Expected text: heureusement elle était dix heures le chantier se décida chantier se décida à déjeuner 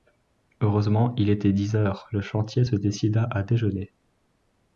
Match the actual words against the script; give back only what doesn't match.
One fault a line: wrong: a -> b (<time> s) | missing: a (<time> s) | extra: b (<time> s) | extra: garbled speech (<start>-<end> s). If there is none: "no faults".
wrong: elle -> il (1.1 s)
missing: chantier se décida (3.3 s)